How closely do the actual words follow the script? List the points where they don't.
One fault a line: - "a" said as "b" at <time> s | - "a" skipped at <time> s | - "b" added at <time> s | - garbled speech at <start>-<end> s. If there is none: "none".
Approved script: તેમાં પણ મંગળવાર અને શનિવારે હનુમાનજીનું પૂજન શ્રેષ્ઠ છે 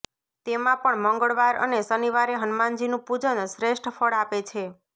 - "ફળ આપે" added at 3.9 s